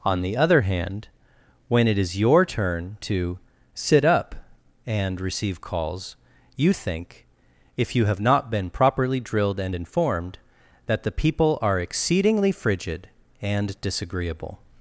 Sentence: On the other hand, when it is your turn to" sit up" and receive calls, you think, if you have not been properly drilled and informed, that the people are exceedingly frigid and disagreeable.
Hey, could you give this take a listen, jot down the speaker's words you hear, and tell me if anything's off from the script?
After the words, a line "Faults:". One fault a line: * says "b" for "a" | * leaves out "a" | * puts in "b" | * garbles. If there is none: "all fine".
On the other hand, when it is your turn to" sit up" and receive calls, you think, if you have not been properly drilled and informed, that the people are exceedingly frigid and disagreeable.
Faults:
all fine